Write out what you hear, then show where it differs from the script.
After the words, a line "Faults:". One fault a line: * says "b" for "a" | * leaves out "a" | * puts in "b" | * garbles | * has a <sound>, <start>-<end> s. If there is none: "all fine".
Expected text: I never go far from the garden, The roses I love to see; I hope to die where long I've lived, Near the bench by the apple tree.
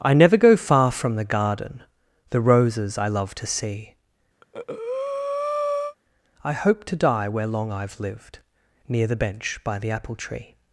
I never go far from the garden, The roses I love to see; I hope to die where long I've lived, Near the bench by the apple tree.
Faults:
* has a breath, 4.4-6.0 s